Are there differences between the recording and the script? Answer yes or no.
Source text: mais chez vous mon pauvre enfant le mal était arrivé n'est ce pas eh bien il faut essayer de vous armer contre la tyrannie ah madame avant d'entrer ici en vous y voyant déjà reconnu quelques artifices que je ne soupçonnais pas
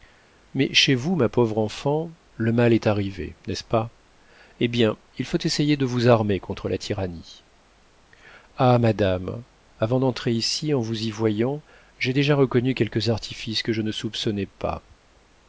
yes